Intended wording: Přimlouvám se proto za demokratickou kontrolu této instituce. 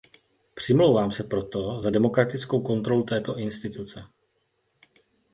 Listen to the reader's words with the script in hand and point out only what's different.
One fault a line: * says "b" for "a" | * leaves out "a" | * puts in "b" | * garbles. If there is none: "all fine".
all fine